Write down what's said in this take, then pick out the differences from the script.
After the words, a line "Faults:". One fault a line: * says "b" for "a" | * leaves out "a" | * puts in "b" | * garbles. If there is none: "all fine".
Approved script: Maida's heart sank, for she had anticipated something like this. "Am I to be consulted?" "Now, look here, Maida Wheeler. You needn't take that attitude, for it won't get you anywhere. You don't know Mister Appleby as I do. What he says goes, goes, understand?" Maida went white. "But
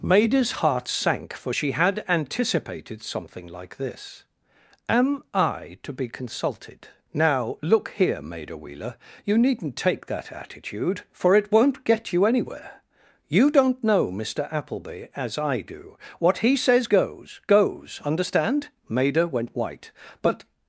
Maida's heart sank, for she had anticipated something like this. "Am I to be consulted?" "Now, look here, Maida Wheeler. You needn't take that attitude, for it won't get you anywhere. You don't know Mister Appleby as I do. What he says goes, goes, understand?" Maida went white. "But
Faults:
all fine